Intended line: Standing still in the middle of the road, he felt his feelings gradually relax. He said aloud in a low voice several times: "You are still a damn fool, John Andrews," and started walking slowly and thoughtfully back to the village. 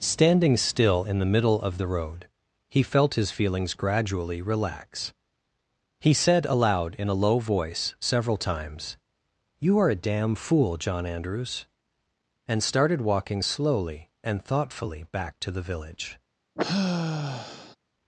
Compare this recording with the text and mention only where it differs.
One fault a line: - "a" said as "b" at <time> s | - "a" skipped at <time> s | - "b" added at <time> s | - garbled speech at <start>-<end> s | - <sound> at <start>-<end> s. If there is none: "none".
- "still" skipped at 9.9 s
- sigh at 16.6-17.8 s